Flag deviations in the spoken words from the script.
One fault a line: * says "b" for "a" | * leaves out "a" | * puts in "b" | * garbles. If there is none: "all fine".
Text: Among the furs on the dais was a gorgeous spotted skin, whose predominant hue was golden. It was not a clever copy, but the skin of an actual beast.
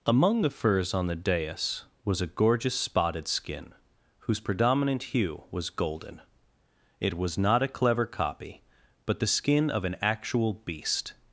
all fine